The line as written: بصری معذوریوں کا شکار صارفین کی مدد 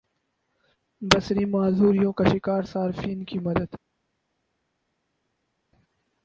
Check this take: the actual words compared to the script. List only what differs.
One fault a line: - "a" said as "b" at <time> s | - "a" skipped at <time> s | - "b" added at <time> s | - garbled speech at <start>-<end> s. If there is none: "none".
none